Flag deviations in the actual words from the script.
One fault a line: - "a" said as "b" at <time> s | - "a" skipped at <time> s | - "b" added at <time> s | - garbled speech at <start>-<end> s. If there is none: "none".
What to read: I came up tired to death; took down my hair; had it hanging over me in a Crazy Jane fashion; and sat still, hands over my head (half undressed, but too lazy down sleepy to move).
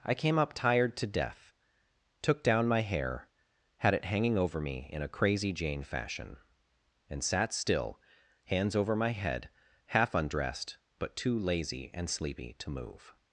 - "down" said as "and" at 11.9 s